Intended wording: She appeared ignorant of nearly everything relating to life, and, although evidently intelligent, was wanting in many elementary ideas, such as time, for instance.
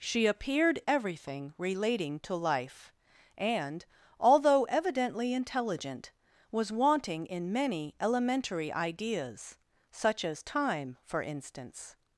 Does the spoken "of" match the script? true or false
false